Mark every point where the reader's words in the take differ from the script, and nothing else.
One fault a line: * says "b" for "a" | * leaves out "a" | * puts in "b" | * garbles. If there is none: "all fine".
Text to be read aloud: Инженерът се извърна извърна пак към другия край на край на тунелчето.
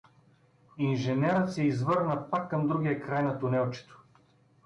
* leaves out "извърна"
* leaves out "край на"